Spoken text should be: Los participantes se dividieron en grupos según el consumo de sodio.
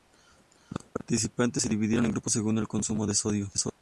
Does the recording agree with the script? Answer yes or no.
yes